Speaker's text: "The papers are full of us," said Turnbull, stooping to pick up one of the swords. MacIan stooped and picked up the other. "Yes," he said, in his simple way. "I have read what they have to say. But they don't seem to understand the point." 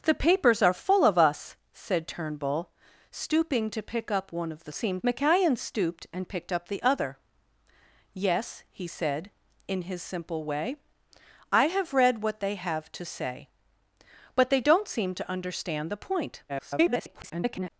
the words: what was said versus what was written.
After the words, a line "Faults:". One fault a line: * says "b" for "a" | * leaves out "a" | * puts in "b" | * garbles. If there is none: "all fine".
"The papers are full of us," said Turnbull, stooping to pick up one of the seem. MacIan stooped and picked up the other. "Yes," he said, in his simple way. "I have read what they have to say. But they don't seem to understand the point." [garbled]
Faults:
* says "seem" for "swords"
* garbles